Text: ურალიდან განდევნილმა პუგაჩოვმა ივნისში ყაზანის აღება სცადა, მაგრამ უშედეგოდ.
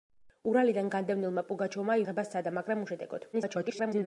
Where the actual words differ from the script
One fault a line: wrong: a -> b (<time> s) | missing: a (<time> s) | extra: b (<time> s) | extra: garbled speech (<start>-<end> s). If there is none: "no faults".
missing: ივნისში ყაზანის (2.0 s)
extra: garbled speech (3.3-4.1 s)